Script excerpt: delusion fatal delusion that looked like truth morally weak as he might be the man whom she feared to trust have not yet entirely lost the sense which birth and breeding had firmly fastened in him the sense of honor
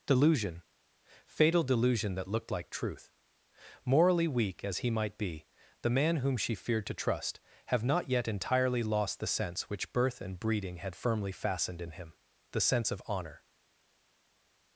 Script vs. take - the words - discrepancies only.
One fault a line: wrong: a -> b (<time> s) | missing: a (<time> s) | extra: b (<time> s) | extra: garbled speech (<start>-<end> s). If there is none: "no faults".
no faults